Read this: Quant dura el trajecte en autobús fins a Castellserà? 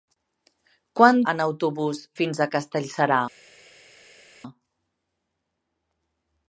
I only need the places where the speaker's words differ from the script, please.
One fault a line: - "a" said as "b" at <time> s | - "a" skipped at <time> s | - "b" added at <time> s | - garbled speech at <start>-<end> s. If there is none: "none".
- "dura el trajecte" skipped at 1.2 s